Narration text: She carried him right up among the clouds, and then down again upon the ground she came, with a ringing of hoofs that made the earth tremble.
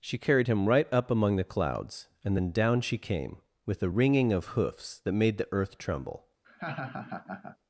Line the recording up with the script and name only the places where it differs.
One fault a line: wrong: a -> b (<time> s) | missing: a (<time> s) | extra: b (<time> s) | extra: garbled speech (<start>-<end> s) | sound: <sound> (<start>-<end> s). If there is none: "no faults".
missing: again upon the ground (2.8 s)
sound: laugh (6.4-7.6 s)